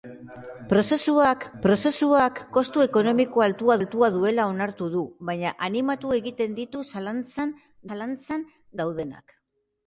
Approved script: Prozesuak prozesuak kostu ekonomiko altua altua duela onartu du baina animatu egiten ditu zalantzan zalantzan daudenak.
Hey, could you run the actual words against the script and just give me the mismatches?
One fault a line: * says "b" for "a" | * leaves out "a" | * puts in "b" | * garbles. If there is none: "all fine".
all fine